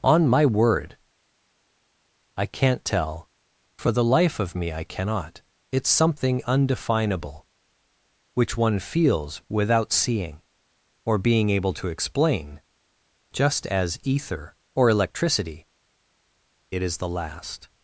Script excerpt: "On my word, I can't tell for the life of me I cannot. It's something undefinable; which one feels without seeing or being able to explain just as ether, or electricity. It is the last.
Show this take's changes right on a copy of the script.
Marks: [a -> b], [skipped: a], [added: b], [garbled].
"On my word, I can't tell for the life of me I cannot. It's something undefinable; which one feels without seeing or being able to explain just as ether, or electricity. It is the last.